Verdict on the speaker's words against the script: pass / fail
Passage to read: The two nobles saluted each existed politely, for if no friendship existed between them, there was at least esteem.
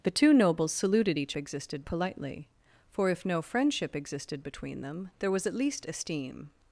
pass